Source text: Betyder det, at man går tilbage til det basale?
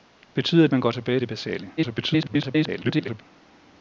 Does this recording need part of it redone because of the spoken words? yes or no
yes